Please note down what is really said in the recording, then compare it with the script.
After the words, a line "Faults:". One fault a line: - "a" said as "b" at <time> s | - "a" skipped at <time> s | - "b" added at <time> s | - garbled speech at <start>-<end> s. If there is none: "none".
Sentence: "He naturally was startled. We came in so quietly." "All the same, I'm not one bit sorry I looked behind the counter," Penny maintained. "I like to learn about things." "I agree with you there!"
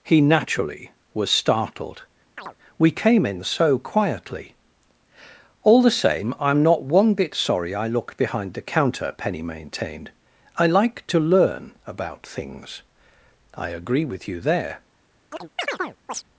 "He naturally was startled. We came in so quietly." "All the same, I'm not one bit sorry I looked behind the counter," Penny maintained. "I like to learn about things." "I agree with you there!"
Faults:
none